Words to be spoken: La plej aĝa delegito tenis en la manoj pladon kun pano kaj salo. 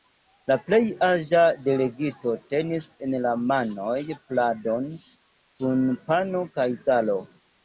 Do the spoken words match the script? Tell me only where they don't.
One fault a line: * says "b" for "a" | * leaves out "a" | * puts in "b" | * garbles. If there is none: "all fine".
all fine